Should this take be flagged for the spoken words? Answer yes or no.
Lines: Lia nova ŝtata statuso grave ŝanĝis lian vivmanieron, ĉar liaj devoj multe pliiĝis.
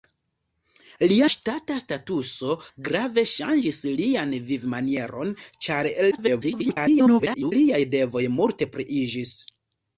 yes